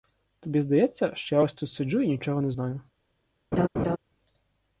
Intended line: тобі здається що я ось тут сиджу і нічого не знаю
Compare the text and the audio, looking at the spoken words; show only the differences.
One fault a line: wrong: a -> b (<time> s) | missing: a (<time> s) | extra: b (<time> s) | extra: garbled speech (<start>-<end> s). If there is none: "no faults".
no faults